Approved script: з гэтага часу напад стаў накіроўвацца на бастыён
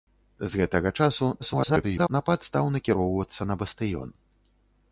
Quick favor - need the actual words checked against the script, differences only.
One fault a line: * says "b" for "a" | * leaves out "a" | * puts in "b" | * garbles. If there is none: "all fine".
* garbles